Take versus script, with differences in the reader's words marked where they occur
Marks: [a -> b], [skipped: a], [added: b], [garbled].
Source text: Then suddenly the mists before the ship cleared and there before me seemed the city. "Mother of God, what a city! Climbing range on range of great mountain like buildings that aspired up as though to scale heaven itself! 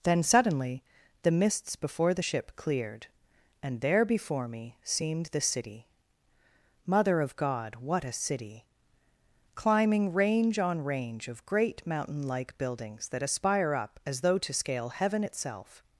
Then suddenly the mists before the ship cleared and there before me seemed the city. "Mother of God, what a city! Climbing range on range of great mountain like buildings that [aspired -> aspire] up as though to scale heaven itself!